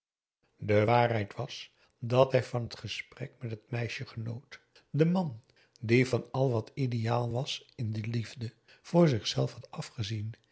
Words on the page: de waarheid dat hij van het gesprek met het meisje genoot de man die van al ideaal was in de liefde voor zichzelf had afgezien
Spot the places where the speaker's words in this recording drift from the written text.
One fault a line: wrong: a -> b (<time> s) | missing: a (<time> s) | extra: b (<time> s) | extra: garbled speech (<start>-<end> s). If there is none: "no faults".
extra: was (1.3 s)
extra: wat (6.5 s)